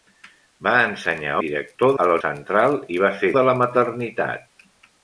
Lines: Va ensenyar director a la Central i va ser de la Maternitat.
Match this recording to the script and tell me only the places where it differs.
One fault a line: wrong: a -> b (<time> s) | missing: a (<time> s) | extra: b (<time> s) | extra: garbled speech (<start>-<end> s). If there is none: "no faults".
no faults